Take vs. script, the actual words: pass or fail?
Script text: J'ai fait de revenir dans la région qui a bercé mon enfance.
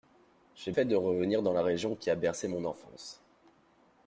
pass